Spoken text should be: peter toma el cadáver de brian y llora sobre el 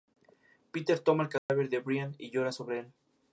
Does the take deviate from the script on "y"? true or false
false